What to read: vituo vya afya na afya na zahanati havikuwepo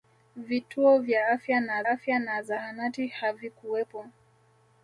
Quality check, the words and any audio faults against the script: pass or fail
pass